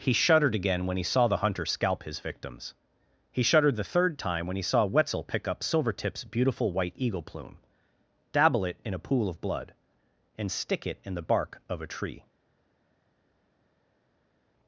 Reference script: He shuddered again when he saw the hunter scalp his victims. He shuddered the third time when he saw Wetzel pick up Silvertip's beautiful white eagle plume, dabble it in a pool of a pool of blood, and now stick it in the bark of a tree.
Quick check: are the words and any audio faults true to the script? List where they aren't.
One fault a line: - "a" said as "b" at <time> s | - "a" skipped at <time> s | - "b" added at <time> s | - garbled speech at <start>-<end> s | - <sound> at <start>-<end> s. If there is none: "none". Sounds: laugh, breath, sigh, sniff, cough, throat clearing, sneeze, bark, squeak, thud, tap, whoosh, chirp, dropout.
- "a pool of" skipped at 9.4 s
- "now" skipped at 10.5 s